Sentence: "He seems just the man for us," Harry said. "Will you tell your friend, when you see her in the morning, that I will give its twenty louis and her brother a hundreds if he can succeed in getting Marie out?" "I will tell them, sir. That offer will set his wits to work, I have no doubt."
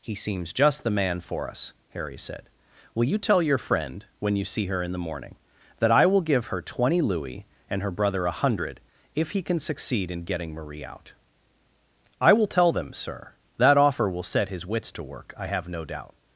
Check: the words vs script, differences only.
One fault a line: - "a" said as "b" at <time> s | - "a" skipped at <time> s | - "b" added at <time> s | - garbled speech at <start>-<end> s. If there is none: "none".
- "its" said as "her" at 6.5 s
- "hundreds" said as "hundred" at 8.3 s